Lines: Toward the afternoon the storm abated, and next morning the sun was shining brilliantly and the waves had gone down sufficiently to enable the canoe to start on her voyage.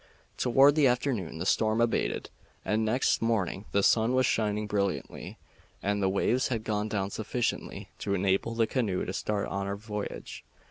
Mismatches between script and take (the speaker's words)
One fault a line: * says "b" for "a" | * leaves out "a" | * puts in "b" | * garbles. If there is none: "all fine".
all fine